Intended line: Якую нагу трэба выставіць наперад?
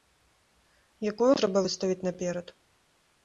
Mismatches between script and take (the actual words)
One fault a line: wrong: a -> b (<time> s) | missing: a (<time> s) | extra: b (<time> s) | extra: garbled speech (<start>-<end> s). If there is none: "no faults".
missing: нагу (1.3 s)